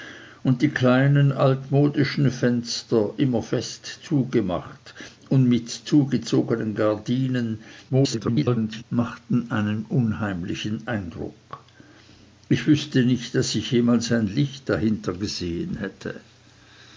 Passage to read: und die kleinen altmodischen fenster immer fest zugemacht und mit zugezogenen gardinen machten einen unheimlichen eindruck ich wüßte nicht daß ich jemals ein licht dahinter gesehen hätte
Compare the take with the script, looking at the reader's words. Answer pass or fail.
fail